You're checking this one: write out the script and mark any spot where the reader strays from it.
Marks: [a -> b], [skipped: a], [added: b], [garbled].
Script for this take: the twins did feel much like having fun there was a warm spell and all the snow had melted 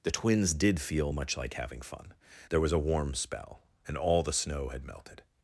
the twins did feel much like having fun there was a warm spell and all the snow had melted